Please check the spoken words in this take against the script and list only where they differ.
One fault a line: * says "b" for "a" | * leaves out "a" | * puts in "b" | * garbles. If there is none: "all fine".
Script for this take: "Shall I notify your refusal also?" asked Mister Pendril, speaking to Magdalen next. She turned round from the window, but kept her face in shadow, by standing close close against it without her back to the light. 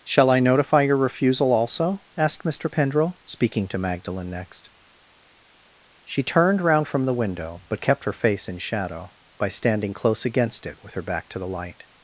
* leaves out "close"
* says "with" for "without"